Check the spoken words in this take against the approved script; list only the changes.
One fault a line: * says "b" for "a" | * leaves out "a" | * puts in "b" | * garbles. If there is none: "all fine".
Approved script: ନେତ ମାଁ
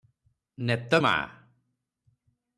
all fine